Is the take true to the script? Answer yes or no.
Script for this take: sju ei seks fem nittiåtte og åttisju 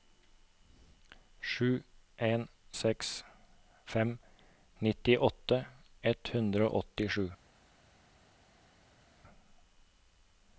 no